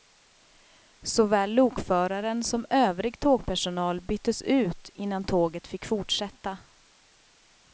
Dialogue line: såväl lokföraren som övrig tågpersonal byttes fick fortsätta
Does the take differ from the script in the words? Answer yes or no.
yes